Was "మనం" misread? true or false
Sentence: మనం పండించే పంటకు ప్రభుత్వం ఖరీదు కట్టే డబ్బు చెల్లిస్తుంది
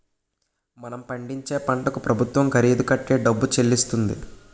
false